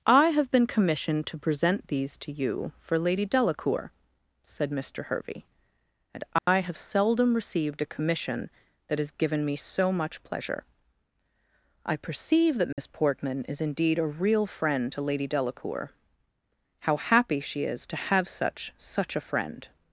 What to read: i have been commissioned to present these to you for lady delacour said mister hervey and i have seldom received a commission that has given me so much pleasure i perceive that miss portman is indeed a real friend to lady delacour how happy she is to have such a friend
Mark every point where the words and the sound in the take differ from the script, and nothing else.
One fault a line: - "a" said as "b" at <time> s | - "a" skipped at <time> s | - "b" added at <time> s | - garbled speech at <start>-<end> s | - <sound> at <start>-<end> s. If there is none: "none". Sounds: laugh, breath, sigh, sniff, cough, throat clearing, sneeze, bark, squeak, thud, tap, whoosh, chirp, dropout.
- dropout at 6.4-6.5 s
- dropout at 12.7-12.8 s
- "such" added at 18.8 s